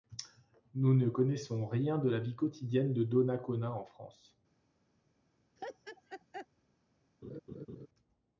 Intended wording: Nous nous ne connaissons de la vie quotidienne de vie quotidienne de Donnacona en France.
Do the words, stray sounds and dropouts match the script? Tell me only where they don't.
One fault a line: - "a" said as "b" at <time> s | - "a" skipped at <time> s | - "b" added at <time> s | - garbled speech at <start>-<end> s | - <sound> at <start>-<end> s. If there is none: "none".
- "nous" skipped at 0.9 s
- "rien" added at 1.7 s
- "vie quotidienne de" skipped at 3.0 s
- laugh at 5.6-6.5 s
- laugh at 7.2-7.9 s